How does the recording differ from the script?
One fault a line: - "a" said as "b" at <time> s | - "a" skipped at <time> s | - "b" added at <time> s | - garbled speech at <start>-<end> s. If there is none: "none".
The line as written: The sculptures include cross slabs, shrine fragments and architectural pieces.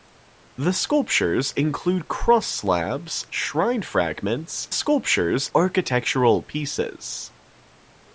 - "and" said as "sculptures" at 4.7 s